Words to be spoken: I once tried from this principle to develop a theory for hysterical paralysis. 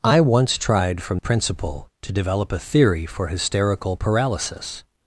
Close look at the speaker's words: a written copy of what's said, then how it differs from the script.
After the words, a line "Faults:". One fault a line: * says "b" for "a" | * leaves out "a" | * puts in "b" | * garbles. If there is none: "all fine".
I once tried from principle to develop a theory for hysterical paralysis.
Faults:
* leaves out "this"